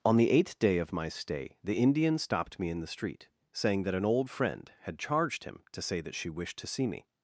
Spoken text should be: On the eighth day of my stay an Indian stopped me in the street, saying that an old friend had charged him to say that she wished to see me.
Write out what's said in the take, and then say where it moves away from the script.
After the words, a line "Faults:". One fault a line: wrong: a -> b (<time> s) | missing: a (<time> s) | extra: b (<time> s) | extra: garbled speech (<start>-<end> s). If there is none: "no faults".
On the eighth day of my stay the Indian stopped me in the street, saying that an old friend had charged him to say that she wished to see me.
Faults:
wrong: an -> the (1.6 s)